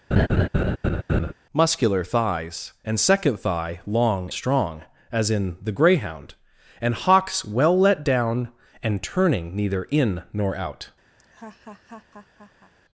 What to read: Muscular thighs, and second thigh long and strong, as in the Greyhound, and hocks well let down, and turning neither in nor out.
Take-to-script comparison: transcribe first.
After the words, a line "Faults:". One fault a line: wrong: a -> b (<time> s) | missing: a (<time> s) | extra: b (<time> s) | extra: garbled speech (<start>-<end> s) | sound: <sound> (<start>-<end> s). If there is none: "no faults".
Muscular thighs, and second thigh long strong, as in the Greyhound, and hocks well let down, and turning neither in nor out.
Faults:
sound: laugh (0.1-1.3 s)
missing: and (4.3 s)
sound: laugh (11.2-12.7 s)